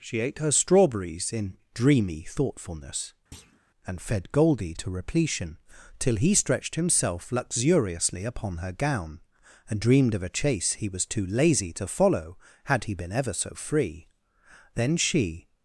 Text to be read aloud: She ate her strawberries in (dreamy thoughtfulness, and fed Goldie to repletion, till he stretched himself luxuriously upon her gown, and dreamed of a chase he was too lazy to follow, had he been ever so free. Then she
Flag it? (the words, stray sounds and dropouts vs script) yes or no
yes